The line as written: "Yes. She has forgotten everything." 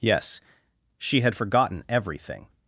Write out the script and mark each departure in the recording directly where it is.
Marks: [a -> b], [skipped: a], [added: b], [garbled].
"Yes. She [has -> had] forgotten everything."